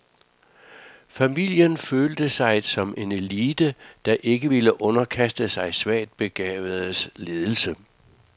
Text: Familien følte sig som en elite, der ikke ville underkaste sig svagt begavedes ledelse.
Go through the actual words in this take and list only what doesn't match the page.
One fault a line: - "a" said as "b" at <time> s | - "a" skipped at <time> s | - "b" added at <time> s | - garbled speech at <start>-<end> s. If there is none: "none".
none